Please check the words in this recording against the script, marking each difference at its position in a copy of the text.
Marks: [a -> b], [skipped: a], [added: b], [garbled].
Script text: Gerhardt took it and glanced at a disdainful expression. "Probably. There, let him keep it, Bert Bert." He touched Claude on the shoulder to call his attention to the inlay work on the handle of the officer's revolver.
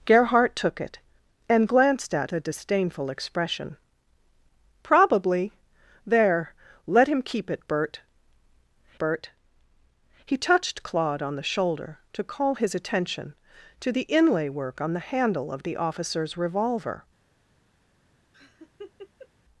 Gerhardt took it and glanced at a disdainful expression. "Probably. There, let him keep it, Bert Bert." He touched Claude on the shoulder to call his attention to the inlay work on the handle of the officer's revolver.